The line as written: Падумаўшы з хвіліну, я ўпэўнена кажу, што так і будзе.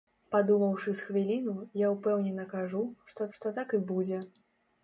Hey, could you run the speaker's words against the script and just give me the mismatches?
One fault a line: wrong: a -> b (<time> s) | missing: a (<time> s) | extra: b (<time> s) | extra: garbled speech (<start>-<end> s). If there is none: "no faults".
extra: што (3.4 s)